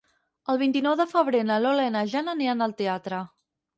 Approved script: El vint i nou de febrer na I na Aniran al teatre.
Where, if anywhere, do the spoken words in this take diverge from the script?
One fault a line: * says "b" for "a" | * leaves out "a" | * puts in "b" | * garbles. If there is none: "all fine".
* puts in "Lola"
* puts in "Jana"